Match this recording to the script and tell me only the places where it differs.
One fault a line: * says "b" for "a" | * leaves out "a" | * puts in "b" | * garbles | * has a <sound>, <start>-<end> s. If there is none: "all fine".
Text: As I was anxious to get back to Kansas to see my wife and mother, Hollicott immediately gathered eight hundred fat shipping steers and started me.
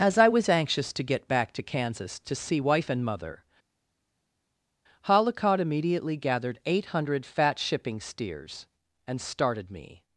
* leaves out "my"